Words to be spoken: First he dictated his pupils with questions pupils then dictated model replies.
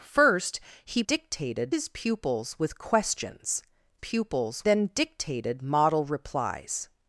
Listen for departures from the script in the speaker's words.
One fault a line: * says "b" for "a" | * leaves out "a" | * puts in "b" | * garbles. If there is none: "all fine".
all fine